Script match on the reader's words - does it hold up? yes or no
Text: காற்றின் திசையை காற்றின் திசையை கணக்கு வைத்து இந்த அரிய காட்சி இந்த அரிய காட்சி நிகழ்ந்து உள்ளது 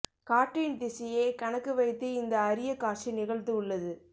no